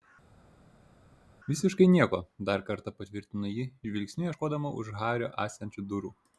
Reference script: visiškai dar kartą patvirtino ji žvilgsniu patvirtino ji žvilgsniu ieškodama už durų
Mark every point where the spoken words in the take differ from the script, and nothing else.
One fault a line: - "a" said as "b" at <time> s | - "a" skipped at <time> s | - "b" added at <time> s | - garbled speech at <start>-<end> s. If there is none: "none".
- "nieko" added at 1.9 s
- "patvirtino ji žvilgsniu ieškodama už" said as "ieškodama už hario esančių" at 4.3 s